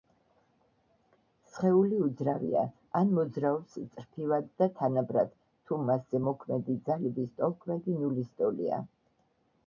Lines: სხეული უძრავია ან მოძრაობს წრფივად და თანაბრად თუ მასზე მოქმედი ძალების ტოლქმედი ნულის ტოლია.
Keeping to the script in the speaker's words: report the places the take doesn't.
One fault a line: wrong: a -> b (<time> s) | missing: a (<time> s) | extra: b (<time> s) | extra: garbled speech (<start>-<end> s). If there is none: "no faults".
no faults